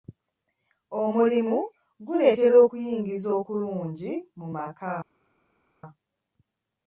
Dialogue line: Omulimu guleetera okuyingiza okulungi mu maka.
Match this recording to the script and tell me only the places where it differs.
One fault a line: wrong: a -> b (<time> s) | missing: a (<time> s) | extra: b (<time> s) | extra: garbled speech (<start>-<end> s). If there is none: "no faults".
no faults